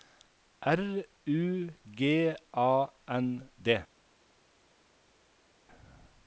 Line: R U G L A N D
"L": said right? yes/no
no